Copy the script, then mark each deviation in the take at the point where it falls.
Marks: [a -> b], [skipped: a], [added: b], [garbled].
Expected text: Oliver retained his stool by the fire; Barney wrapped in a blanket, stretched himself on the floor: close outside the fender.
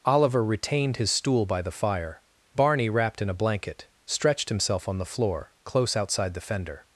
Oliver retained his stool by the fire; Barney wrapped in a blanket, stretched himself on the floor: close outside the fender.